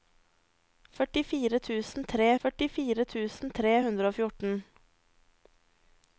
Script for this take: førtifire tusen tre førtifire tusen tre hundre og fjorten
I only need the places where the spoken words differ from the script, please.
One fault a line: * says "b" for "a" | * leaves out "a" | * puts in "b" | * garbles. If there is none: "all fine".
all fine